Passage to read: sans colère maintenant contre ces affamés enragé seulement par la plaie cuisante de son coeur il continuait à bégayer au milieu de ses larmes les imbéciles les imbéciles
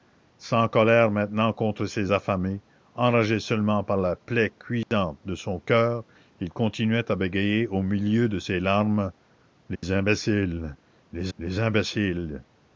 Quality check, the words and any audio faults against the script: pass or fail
fail